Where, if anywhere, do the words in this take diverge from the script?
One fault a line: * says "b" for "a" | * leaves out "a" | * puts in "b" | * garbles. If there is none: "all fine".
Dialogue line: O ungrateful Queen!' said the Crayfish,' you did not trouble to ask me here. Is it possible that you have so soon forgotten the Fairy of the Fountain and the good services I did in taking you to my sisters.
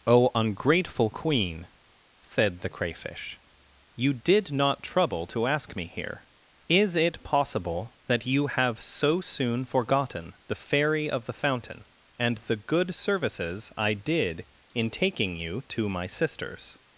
all fine